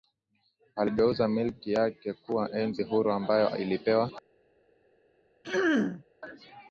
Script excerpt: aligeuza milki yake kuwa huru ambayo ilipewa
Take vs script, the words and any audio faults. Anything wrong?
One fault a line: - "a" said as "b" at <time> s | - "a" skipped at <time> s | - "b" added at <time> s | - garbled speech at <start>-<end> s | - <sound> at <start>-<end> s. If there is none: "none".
- "enzi" added at 2.5 s
- throat clearing at 5.4-6.0 s